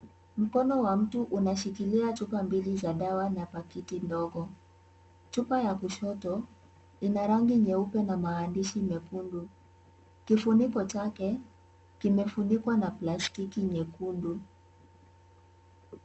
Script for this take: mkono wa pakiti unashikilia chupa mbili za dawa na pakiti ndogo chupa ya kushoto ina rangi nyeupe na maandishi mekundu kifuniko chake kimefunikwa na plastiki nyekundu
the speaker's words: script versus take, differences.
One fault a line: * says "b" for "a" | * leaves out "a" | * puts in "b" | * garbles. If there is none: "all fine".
* says "mtu" for "pakiti"